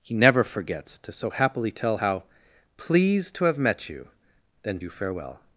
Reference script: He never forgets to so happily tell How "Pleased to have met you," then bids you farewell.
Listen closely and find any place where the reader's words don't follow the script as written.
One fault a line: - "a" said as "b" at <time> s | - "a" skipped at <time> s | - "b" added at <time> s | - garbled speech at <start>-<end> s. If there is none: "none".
- "bids" skipped at 4.8 s